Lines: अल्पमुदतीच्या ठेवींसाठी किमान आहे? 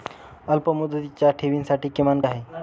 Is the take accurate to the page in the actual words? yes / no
yes